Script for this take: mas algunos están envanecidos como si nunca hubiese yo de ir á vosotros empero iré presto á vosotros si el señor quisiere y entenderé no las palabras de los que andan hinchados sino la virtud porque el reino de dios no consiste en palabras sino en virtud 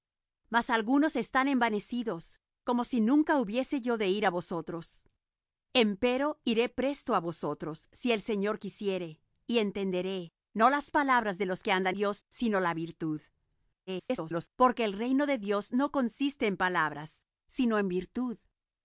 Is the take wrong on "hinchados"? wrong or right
wrong